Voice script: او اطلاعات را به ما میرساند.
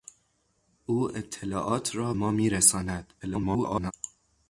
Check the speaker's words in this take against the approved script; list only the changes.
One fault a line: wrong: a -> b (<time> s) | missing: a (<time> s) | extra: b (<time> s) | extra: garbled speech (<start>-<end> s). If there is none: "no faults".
missing: به (2.1 s)
extra: garbled speech (3.2-3.9 s)